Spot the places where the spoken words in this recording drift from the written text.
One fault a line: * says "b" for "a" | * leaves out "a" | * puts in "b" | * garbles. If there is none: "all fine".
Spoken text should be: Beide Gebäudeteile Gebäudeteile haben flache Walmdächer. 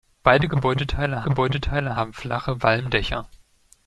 all fine